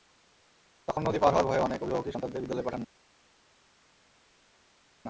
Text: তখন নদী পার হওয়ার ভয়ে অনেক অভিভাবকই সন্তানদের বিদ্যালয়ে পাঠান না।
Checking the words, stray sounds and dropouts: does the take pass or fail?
pass